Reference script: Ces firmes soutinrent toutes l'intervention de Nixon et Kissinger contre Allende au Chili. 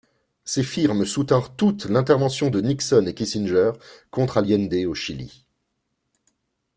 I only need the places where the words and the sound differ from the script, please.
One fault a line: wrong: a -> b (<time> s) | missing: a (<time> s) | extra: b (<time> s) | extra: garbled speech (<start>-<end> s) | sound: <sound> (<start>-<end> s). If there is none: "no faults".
no faults